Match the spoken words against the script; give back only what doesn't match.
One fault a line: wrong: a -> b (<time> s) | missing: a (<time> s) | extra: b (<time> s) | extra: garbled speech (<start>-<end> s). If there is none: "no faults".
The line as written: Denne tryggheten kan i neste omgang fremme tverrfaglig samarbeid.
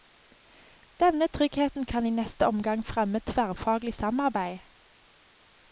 no faults